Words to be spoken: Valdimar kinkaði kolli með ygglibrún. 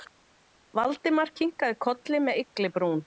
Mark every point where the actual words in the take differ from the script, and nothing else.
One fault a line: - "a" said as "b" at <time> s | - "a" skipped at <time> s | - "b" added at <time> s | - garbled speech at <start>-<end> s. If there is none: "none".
none